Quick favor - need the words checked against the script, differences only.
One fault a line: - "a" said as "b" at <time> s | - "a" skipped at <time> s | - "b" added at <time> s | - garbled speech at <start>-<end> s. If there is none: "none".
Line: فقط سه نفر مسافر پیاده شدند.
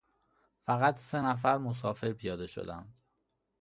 none